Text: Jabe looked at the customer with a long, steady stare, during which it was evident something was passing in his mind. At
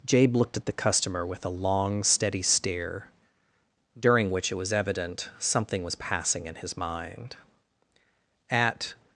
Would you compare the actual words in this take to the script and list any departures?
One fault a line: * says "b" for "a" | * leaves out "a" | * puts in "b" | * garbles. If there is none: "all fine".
all fine